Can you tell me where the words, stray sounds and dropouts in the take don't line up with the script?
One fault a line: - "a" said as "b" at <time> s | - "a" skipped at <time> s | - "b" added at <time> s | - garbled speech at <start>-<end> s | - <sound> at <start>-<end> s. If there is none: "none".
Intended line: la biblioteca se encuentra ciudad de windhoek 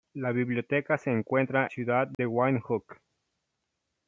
- dropout at 2.1-2.2 s